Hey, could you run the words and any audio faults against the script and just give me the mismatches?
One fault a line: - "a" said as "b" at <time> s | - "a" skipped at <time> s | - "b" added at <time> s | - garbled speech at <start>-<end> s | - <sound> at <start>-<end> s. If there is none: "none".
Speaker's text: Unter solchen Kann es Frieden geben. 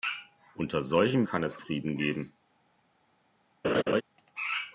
- laugh at 3.6-4.0 s